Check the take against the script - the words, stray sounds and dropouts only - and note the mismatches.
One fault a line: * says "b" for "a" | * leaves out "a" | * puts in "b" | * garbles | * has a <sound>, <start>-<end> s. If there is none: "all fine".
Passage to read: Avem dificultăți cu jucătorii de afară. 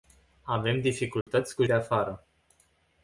* has a dropout, 1.2-1.3 s
* leaves out "jucătorii"